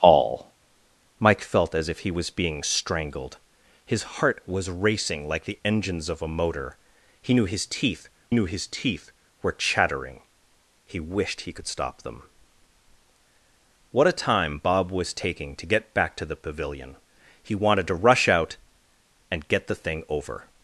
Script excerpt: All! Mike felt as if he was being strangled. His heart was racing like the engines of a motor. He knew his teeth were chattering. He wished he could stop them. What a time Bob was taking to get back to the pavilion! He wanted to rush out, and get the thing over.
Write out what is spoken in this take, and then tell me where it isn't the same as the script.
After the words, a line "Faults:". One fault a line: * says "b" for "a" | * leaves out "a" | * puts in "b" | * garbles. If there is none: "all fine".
All! Mike felt as if he was being strangled. His heart was racing like the engines of a motor. He knew his teeth knew his teeth were chattering. He wished he could stop them. What a time Bob was taking to get back to the pavilion! He wanted to rush out, and get the thing over.
Faults:
* puts in "knew his teeth"